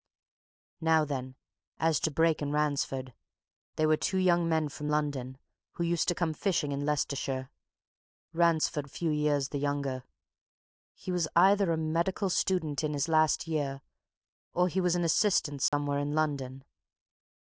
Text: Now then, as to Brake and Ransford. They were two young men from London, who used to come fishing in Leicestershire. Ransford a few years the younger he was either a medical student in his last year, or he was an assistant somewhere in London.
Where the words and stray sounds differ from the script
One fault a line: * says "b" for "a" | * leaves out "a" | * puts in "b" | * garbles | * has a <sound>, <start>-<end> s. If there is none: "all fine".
* has a dropout, 15.7-15.7 s